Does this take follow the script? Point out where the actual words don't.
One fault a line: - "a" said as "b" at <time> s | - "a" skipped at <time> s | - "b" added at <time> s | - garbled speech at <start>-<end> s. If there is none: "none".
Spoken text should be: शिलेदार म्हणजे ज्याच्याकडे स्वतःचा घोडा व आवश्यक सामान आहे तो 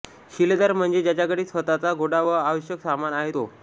none